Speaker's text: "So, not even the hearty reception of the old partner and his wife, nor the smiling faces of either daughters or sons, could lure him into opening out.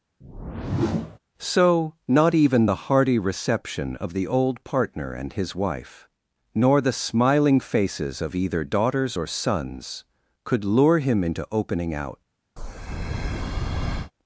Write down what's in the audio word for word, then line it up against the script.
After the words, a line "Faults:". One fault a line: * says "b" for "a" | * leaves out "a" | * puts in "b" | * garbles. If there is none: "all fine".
"So, not even the hearty reception of the old partner and his wife, nor the smiling faces of either daughters or sons, could lure him into opening out.
Faults:
all fine